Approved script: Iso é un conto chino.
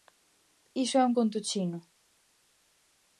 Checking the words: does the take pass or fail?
pass